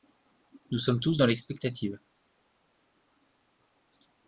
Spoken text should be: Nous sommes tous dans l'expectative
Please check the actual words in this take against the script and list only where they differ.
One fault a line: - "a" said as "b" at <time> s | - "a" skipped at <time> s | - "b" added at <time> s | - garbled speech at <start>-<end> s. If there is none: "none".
none